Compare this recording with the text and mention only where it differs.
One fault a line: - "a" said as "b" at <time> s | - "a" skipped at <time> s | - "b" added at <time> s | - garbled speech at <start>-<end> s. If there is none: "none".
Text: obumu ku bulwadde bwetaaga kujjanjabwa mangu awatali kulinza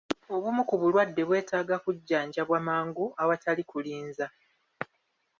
none